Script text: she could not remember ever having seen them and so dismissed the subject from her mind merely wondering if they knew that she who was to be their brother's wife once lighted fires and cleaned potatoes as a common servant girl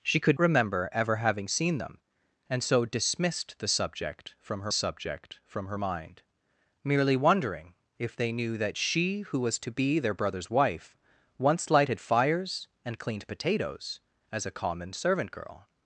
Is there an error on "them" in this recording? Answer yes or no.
no